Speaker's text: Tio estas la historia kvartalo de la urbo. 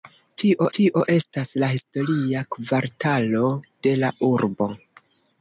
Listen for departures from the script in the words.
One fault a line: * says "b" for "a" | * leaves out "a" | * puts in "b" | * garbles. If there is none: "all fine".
* puts in "tio"